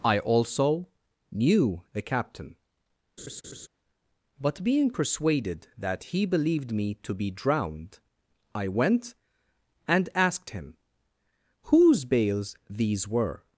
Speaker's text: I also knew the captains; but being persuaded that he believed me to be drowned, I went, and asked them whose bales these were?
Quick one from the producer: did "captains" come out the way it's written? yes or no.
no